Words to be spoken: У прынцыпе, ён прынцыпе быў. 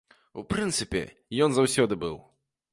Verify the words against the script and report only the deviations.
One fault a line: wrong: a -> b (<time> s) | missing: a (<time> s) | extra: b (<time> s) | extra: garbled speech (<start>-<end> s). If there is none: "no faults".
wrong: прынцыпе -> заўсёды (1.6 s)